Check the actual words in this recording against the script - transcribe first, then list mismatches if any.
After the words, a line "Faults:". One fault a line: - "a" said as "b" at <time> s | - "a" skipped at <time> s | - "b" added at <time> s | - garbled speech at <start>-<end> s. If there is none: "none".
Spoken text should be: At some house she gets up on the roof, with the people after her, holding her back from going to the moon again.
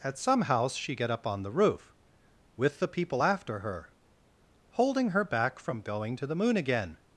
At some house she get up on the roof, with the people after her, holding her back from going to the moon again.
Faults:
- "gets" said as "get" at 0.9 s